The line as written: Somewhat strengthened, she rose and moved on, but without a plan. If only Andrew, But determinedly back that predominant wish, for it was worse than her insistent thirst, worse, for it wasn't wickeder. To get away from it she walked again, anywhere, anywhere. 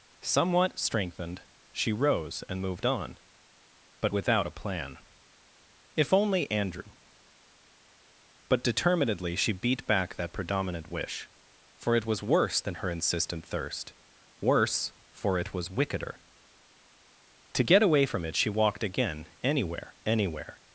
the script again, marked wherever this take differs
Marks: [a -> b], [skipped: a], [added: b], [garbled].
Somewhat strengthened, she rose and moved on, but without a plan. If only Andrew, But determinedly [added: she beat] back that predominant wish, for it was worse than her insistent thirst, worse, for it [wasn't -> was] wickeder. To get away from it she walked again, anywhere, anywhere.